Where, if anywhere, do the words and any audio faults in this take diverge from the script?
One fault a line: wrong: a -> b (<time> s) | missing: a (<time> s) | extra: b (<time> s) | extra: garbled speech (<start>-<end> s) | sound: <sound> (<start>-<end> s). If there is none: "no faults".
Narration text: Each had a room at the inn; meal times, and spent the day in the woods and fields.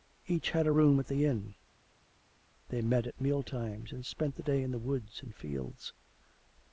extra: they met at (2.7 s)